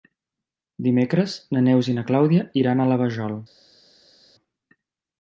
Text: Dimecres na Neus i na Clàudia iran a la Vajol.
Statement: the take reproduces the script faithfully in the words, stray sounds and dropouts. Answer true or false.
true